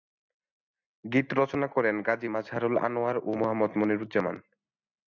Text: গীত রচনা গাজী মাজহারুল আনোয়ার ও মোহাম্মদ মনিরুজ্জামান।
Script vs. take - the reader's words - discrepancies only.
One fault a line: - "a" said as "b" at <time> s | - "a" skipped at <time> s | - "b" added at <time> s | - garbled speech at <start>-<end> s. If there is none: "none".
- "করেন" added at 1.7 s